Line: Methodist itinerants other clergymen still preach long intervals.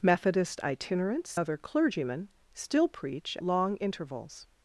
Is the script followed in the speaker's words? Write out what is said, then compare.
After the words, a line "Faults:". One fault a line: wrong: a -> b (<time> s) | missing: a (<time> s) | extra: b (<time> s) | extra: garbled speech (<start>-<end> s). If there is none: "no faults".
Methodist itinerants other clergymen still preach long intervals.
Faults:
no faults